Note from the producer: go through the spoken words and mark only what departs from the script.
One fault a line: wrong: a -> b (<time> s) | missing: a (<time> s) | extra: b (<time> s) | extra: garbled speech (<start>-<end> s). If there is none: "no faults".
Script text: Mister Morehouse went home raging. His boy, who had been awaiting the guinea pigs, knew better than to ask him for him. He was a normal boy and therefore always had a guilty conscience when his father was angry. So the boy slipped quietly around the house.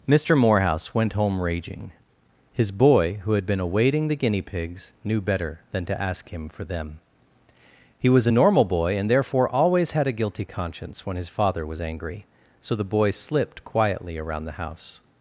wrong: him -> them (6.6 s)